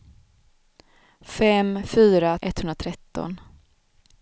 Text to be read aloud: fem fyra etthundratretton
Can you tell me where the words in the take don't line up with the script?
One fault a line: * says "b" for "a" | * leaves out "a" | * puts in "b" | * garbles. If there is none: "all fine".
all fine